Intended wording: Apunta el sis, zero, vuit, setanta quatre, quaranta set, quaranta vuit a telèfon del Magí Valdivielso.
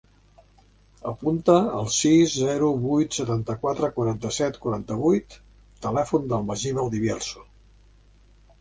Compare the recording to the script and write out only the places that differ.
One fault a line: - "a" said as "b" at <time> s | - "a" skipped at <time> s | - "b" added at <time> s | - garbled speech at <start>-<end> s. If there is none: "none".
none